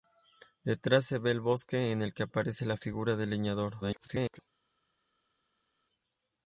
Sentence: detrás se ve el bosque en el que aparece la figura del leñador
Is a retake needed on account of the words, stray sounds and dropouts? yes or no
yes